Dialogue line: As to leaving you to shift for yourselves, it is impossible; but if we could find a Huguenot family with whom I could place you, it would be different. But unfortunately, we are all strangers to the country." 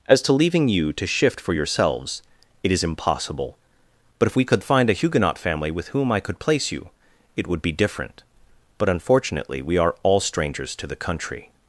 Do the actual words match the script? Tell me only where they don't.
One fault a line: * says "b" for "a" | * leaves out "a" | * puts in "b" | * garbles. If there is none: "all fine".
all fine